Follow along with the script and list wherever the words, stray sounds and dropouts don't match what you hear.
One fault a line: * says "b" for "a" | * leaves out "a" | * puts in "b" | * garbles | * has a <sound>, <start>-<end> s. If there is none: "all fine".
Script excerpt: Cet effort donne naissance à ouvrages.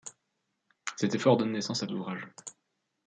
all fine